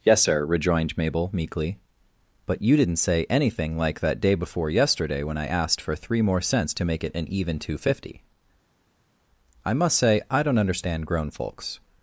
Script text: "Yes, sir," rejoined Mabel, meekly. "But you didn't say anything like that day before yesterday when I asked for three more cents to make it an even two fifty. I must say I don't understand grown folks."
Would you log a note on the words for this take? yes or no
no